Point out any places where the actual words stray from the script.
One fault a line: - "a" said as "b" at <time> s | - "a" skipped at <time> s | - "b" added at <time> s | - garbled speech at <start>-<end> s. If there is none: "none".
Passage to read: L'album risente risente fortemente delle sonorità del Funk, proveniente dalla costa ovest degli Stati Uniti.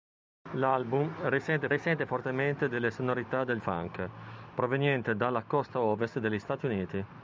none